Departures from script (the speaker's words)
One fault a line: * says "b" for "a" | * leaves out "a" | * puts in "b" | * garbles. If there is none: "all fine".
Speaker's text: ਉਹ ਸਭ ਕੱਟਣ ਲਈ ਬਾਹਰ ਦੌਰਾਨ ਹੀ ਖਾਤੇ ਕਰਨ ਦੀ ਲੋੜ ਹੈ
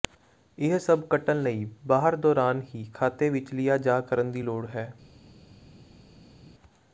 * says "ਇਹ" for "ਉਹ"
* puts in "ਵਿੱਚ ਲਿਆ ਜਾ"